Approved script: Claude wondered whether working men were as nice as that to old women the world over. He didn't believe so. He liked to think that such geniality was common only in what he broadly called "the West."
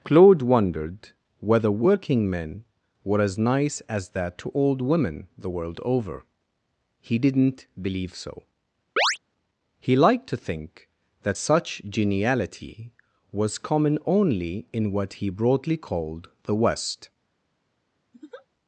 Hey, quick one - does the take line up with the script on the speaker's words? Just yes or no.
yes